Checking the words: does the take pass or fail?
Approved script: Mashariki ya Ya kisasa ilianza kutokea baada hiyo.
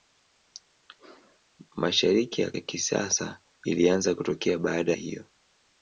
pass